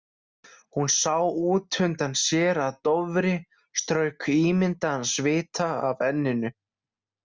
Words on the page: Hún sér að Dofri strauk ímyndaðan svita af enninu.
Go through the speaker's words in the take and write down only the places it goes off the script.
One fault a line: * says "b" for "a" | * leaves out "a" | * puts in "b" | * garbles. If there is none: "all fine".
* puts in "sá útundan"